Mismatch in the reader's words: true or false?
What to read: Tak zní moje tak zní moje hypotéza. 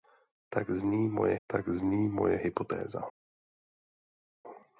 false